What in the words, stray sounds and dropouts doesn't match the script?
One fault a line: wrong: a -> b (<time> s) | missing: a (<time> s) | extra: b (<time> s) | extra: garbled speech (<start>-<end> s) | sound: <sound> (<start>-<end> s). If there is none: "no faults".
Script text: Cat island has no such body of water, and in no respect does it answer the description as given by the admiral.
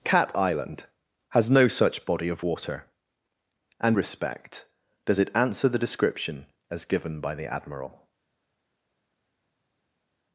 missing: in no (4.0 s)